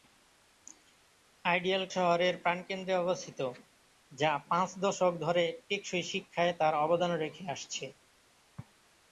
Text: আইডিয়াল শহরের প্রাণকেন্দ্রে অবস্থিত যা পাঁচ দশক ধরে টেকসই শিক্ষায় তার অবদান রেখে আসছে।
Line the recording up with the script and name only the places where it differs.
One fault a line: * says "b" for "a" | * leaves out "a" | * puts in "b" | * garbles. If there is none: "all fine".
all fine